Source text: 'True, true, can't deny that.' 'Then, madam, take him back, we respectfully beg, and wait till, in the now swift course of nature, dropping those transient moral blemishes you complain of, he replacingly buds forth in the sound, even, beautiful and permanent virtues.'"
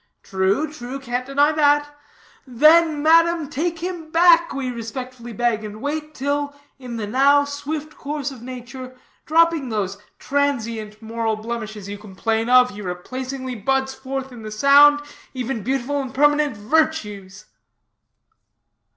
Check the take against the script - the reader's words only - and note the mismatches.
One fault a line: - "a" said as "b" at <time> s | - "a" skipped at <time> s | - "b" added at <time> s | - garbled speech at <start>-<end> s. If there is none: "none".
none